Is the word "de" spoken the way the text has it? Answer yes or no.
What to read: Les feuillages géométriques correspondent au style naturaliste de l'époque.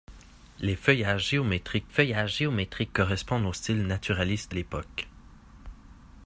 no